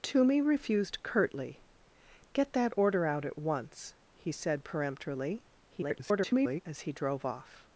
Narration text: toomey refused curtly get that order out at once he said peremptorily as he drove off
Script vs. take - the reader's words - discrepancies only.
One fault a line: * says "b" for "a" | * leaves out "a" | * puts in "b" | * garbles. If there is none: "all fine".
* garbles